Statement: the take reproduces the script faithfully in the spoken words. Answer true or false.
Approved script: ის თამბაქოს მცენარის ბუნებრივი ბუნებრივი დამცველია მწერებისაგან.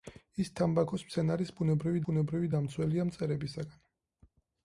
true